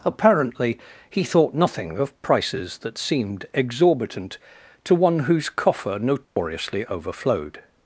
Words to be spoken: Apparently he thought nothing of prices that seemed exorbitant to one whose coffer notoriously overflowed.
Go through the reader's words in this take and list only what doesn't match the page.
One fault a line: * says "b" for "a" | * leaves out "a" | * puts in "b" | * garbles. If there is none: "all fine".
all fine